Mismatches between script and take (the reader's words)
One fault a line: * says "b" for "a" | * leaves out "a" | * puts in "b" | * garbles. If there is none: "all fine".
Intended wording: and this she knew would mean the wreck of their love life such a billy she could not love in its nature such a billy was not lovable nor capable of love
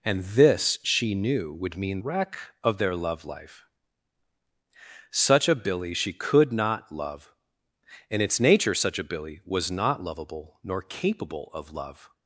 * leaves out "the"